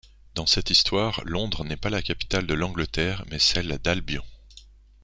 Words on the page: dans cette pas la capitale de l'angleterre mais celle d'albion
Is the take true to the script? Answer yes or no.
no